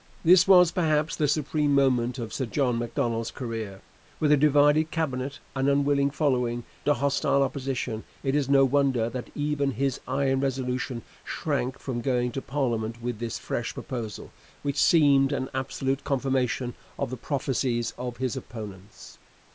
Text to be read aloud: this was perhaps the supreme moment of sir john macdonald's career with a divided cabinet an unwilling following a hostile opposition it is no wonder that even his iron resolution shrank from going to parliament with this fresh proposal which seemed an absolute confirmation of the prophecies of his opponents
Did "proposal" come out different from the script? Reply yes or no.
no